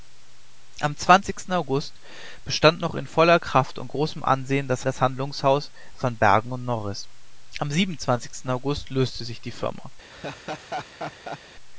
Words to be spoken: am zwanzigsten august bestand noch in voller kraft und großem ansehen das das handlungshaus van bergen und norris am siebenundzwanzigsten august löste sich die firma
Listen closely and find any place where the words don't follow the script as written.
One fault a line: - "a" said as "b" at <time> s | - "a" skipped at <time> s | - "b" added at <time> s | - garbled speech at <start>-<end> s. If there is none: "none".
none